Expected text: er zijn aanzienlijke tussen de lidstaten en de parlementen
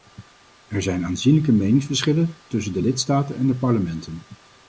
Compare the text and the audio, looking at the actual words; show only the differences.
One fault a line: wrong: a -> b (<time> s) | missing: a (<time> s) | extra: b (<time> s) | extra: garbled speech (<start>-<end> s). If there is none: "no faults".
extra: meningsverschillen (1.5 s)